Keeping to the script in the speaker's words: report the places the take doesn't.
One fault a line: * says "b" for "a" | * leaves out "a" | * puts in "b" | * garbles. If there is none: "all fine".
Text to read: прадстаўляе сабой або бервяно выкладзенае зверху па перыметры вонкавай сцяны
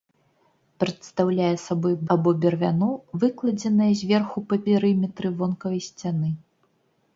all fine